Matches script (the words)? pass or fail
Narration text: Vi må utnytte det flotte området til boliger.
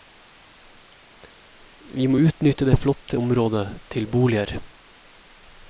pass